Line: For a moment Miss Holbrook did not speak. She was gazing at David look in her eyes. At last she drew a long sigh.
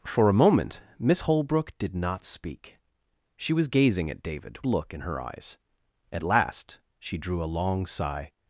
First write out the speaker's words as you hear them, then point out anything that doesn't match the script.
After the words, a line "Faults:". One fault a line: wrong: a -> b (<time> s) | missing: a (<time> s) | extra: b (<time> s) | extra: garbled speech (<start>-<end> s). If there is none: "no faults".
For a moment Miss Holbrook did not speak. She was gazing at David look in her eyes. At last she drew a long sigh.
Faults:
no faults